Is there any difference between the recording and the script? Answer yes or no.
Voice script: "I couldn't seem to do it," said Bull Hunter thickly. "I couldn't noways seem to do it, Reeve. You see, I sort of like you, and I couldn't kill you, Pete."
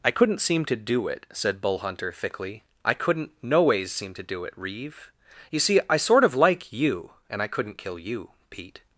no